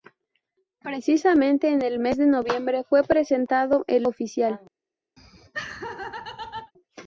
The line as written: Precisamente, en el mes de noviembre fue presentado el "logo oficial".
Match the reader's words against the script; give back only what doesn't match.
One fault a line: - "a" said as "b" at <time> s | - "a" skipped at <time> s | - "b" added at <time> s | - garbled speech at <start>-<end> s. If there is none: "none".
- "logo" skipped at 4.0 s